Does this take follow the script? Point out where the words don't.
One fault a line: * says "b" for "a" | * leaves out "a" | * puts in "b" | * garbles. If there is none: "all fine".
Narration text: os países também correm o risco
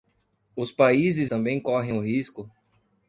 all fine